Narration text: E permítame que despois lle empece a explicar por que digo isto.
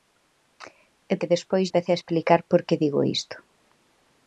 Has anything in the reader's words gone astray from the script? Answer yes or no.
yes